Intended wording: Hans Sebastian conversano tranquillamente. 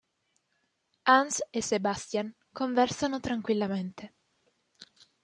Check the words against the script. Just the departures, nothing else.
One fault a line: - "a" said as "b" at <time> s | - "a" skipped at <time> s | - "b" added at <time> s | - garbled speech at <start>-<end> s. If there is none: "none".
- "e" added at 1.5 s